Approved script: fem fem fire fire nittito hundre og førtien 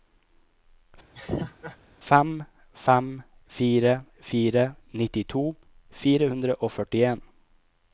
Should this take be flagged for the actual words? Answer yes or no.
yes